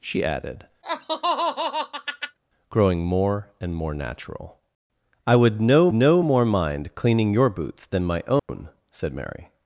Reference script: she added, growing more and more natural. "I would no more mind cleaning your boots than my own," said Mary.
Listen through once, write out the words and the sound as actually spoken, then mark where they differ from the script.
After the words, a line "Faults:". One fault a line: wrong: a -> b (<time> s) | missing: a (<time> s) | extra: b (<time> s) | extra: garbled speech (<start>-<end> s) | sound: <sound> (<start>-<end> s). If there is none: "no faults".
she added, growing more and more natural. "I would no no more mind cleaning your boots than my own," said Mary.
Faults:
sound: laugh (0.8-2.4 s)
extra: no (5.9 s)
sound: dropout (8.4-8.5 s)